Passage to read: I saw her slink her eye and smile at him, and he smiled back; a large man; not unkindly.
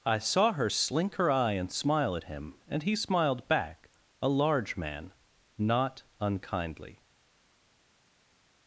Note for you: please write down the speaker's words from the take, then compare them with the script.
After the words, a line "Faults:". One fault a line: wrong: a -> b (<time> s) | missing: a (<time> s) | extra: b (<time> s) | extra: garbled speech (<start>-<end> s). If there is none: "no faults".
I saw her slink her eye and smile at him, and he smiled back; a large man; not unkindly.
Faults:
no faults